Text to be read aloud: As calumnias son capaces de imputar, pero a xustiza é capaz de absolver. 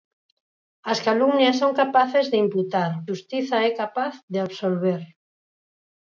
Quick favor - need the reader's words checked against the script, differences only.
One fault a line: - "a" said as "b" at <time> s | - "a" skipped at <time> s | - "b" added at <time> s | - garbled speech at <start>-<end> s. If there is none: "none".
- "pero a" skipped at 2.9 s